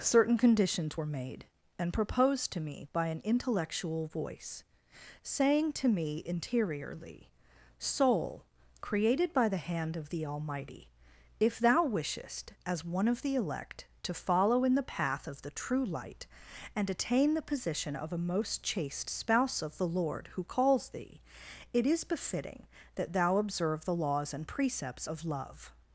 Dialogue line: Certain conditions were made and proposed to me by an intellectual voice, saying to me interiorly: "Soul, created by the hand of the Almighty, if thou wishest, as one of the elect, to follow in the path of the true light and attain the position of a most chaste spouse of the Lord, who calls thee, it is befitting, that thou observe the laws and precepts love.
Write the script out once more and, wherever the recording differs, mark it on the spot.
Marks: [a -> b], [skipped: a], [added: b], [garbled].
Certain conditions were made and proposed to me by an intellectual voice, saying to me interiorly: "Soul, created by the hand of the Almighty, if thou wishest, as one of the elect, to follow in the path of the true light and attain the position of a most chaste spouse of the Lord, who calls thee, it is befitting, that thou observe the laws and precepts [added: of] love.